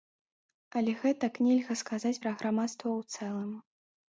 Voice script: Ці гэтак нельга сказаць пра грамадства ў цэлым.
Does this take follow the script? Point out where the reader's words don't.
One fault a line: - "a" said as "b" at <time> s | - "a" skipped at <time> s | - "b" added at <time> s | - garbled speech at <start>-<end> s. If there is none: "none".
- "Ці" said as "Але" at 0.8 s